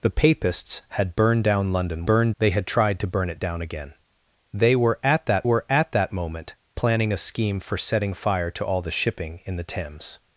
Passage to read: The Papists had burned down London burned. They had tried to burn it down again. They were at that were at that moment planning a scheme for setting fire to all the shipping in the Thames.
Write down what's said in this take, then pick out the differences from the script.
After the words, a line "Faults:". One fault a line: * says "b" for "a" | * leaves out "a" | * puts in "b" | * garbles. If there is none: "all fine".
The Papists had burned down London burned. They had tried to burn it down again. They were at that were at that moment planning a scheme for setting fire to all the shipping in the Thames.
Faults:
all fine